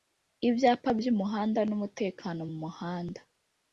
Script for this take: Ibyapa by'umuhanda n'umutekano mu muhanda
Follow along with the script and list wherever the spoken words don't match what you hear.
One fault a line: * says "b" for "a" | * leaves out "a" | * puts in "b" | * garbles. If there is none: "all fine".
all fine